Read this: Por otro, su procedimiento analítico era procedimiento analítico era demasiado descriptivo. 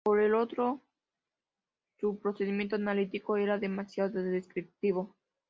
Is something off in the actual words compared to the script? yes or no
yes